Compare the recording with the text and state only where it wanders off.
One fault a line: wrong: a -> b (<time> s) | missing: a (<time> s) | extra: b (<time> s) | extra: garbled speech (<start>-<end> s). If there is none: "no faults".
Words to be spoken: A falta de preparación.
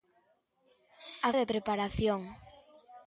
missing: falta (1.3 s)